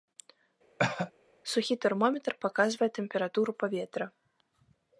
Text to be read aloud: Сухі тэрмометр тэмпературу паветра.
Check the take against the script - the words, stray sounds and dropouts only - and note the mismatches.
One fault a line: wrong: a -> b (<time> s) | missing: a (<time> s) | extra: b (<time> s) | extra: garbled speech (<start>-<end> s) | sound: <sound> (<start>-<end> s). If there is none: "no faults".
sound: cough (0.8-1.1 s)
extra: паказвае (2.5 s)